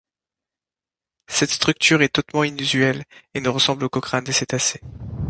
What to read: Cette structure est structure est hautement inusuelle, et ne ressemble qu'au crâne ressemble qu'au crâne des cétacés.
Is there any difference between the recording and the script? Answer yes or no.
yes